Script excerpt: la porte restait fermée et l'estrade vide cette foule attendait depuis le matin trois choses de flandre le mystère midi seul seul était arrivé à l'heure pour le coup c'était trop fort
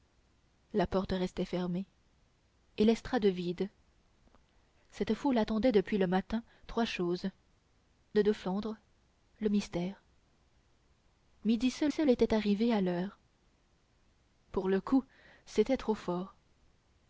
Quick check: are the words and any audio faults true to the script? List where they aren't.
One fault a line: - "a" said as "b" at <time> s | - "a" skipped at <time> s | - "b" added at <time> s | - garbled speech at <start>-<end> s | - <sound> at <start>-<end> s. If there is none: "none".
none